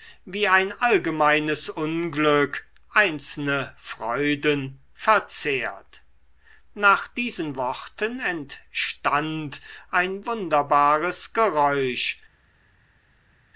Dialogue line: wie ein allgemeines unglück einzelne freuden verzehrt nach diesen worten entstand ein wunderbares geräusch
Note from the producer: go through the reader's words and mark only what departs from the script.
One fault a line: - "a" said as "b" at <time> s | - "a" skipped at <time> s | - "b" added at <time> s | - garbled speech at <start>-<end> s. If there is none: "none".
none